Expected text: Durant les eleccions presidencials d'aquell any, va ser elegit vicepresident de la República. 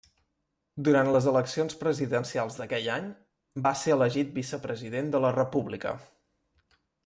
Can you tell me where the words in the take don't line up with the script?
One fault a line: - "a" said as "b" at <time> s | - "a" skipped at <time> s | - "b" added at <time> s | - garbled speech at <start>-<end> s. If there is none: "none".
none